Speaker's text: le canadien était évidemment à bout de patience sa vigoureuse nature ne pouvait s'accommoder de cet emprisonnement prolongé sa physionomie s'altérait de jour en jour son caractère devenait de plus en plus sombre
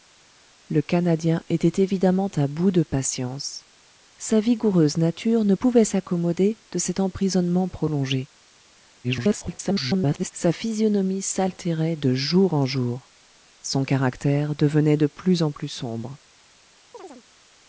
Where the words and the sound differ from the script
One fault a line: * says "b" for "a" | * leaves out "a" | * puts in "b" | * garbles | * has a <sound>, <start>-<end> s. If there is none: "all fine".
* garbles
* has a chirp, 16.9-17.2 s